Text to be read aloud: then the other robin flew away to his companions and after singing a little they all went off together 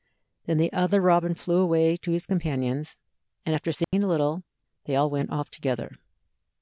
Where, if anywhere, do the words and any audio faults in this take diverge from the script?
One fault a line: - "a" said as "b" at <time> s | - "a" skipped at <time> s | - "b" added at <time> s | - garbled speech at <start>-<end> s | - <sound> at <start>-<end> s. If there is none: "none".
- dropout at 3.8-3.9 s